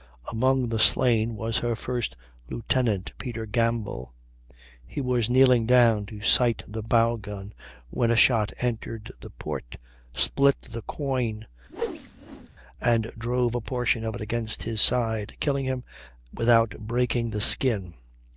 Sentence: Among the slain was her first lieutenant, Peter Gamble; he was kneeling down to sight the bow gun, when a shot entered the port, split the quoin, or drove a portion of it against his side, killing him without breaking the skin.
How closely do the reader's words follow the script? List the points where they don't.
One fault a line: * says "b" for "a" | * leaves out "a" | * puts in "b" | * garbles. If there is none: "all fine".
* says "and" for "or"